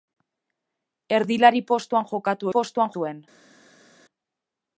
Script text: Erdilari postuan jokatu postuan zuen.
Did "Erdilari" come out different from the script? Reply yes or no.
no